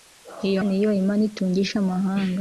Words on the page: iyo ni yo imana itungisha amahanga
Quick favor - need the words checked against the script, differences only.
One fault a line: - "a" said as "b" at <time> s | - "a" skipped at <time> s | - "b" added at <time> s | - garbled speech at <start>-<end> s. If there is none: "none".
none